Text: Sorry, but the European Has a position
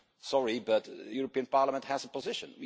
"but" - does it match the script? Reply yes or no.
yes